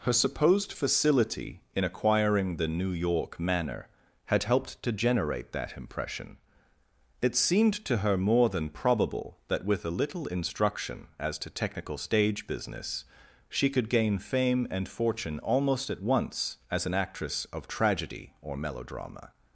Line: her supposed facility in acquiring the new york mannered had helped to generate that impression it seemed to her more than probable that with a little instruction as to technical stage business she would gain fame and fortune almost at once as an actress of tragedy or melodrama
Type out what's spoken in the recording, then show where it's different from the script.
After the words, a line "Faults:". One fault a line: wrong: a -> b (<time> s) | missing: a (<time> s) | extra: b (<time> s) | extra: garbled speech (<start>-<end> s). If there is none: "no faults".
her supposed facility in acquiring the new york manner had helped to generate that impression it seemed to her more than probable that with a little instruction as to technical stage business she could gain fame and fortune almost at once as an actress of tragedy or melodrama
Faults:
wrong: mannered -> manner (3.4 s)
wrong: would -> could (13.7 s)